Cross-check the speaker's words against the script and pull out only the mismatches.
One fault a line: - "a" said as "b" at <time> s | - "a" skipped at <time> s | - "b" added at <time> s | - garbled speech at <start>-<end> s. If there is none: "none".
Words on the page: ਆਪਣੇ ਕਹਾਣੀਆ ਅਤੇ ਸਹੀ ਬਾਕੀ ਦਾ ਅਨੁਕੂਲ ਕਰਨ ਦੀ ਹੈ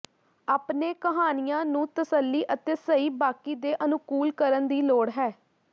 - "ਨੂੰ ਤਸੱਲੀ" added at 1.6 s
- "ਦਾ" said as "ਦੇ" at 3.6 s
- "ਲੋੜ" added at 4.8 s